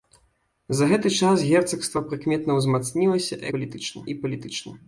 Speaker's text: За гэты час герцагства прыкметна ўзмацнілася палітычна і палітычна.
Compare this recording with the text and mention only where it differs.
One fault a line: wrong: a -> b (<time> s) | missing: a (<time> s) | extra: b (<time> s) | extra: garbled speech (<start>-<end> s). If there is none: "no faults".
no faults